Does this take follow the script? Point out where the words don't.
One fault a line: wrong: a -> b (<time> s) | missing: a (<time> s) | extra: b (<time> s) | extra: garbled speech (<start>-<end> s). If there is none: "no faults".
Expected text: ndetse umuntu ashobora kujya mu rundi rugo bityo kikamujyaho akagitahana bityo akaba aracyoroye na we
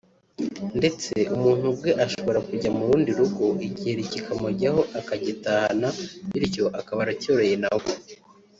extra: ubwe (1.7 s)
wrong: bityo -> igiheri (3.7 s)